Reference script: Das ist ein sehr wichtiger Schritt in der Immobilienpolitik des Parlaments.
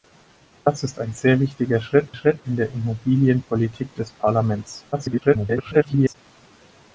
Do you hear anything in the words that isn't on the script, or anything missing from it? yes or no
yes